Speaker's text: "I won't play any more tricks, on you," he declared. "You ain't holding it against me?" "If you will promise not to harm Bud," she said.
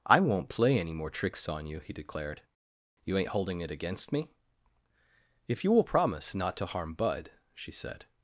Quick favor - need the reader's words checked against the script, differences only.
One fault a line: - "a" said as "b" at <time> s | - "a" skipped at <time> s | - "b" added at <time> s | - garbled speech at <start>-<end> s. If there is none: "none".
none